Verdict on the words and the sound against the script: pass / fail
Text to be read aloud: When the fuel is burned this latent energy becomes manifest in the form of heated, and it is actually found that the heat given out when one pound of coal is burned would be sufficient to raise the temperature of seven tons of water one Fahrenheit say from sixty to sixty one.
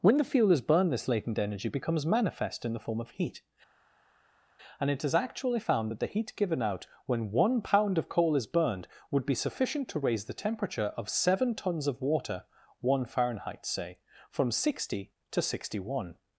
fail